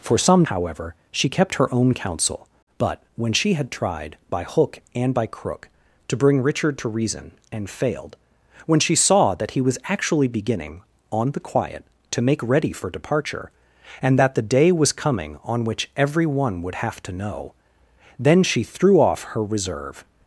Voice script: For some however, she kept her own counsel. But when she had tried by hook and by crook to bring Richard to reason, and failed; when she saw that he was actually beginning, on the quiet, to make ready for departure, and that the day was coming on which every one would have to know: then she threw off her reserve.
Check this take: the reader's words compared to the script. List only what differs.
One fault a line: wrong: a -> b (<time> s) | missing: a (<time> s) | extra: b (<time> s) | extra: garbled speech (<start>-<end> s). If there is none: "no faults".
no faults